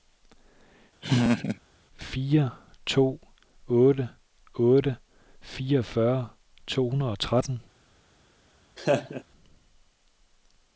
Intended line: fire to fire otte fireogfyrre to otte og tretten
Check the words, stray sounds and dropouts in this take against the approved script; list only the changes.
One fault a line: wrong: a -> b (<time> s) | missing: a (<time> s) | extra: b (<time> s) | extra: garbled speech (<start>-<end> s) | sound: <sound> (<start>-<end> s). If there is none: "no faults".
sound: laugh (1.0-1.6 s)
wrong: fire -> otte (3.7 s)
wrong: otte -> hundrede (6.9 s)
sound: laugh (8.8-9.2 s)